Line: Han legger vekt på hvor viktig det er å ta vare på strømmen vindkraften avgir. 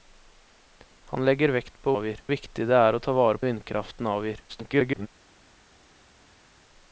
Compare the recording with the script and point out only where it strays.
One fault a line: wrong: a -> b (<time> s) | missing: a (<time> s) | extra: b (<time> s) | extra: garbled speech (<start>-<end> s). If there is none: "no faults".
wrong: hvor -> avgir (1.9 s)
missing: på strømmen (3.4 s)
extra: garbled speech (4.5-5.1 s)